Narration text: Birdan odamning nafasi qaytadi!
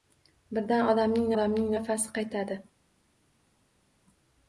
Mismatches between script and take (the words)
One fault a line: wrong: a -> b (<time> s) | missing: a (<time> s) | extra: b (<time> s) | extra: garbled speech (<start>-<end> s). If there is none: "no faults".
extra: odamning (1.3 s)